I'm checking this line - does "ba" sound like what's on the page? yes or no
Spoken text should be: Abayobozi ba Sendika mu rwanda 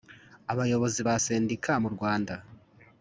yes